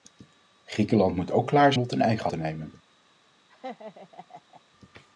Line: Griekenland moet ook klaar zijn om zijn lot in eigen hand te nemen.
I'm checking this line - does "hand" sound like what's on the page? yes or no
no